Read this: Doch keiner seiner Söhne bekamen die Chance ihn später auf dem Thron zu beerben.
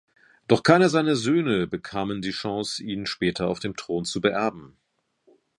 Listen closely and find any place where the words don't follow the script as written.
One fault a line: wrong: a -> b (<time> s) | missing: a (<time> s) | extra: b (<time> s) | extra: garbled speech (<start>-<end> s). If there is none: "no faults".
no faults